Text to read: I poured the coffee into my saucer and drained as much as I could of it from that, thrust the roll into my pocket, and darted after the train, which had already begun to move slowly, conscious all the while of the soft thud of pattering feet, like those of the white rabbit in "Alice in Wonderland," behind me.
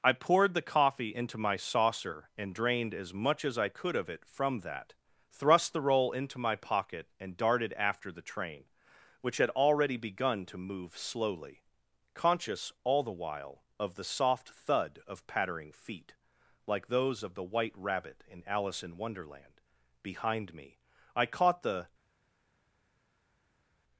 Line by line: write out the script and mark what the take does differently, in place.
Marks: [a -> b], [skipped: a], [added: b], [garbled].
I poured the coffee into my saucer and drained as much as I could of it from that, thrust the roll into my pocket, and darted after the train, which had already begun to move slowly, conscious all the while of the soft thud of pattering feet, like those of the white rabbit in "Alice in Wonderland," behind me. [added: I caught the]